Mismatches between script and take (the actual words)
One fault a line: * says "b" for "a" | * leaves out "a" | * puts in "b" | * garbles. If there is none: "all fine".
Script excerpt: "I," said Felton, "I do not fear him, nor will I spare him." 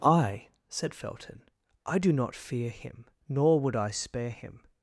* says "would" for "will"